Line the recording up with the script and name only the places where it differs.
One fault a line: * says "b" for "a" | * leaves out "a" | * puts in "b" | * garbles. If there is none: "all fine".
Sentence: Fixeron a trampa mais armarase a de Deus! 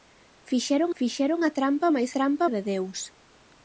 * puts in "fixeron"
* says "trampa" for "armarase"